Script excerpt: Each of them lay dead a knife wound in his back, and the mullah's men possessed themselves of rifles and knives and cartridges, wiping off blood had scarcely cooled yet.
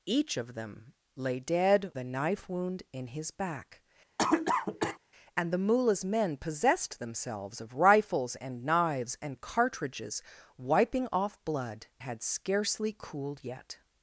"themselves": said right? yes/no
yes